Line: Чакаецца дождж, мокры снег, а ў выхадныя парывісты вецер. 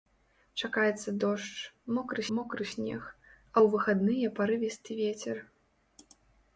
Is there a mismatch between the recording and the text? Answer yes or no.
yes